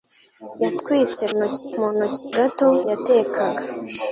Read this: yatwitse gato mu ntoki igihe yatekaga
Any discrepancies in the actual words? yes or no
yes